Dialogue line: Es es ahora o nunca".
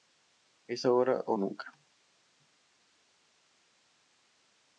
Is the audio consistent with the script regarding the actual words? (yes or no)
no